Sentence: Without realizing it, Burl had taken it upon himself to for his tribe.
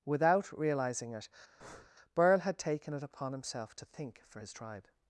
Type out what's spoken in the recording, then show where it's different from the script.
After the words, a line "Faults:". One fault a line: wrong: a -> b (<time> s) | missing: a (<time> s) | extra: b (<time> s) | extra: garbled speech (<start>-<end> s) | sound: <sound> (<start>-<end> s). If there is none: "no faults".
Without realizing it, Burl had taken it upon himself to think for his tribe.
Faults:
sound: breath (1.6-1.9 s)
extra: think (3.8 s)